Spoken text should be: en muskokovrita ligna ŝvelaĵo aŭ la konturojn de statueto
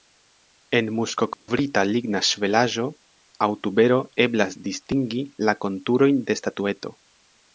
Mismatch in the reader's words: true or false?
true